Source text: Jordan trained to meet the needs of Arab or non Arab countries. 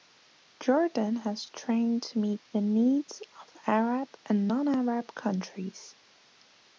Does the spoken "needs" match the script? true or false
true